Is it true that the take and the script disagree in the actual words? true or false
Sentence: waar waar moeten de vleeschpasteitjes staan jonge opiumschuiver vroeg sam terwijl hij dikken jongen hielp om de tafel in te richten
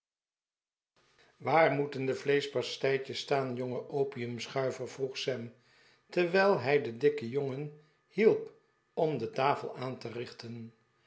true